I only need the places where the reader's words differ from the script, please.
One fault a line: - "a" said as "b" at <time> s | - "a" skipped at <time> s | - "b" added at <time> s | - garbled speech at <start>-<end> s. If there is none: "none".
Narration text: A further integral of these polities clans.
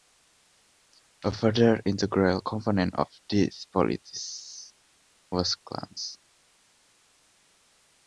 - "component" added at 2.4 s
- "was" added at 5.3 s